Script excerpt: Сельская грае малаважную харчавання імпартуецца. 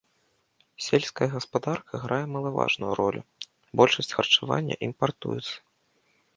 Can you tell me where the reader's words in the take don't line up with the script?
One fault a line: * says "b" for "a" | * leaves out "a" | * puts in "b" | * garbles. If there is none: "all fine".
* puts in "гаспадарка"
* puts in "ролю большасць"